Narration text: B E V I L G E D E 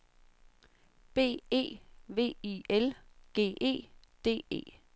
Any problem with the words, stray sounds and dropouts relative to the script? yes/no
no